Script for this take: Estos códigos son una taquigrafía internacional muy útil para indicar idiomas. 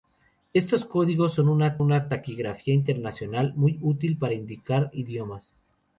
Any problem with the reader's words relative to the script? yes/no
yes